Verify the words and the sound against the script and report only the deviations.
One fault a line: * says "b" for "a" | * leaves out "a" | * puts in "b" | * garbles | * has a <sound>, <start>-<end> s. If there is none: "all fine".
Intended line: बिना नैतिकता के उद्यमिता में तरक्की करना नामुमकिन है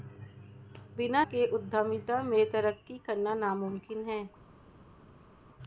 * leaves out "नैतिकता"